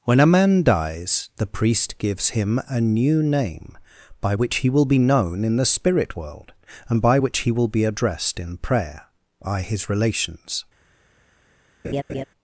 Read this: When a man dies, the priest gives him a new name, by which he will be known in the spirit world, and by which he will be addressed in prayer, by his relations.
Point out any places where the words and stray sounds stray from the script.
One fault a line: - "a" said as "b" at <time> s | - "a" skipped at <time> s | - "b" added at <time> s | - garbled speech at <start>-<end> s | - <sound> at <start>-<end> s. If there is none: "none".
- laugh at 11.8-12.2 s